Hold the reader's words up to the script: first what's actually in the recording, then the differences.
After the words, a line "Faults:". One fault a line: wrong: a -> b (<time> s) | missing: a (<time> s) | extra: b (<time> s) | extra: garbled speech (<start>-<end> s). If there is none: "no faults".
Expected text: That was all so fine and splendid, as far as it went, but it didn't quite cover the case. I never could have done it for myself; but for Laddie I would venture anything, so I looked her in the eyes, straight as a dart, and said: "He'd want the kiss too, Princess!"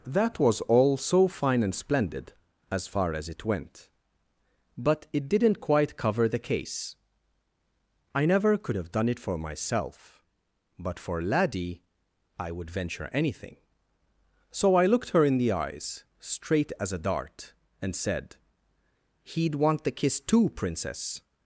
That was all so fine and splendid, as far as it went, but it didn't quite cover the case. I never could have done it for myself; but for Laddie I would venture anything, so I looked her in the eyes, straight as a dart, and said: "He'd want the kiss too, Princess!"
Faults:
no faults